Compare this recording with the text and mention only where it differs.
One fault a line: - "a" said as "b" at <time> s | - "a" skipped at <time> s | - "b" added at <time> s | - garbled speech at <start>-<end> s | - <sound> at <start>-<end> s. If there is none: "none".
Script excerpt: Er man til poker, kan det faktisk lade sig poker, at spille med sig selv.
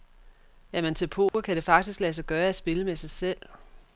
- dropout at 1.3-1.3 s
- "poker" said as "gøre" at 2.3 s